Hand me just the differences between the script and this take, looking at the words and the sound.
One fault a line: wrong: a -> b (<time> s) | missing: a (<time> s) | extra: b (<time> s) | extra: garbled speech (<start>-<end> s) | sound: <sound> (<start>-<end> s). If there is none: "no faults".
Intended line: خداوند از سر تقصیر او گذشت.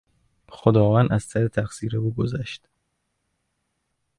no faults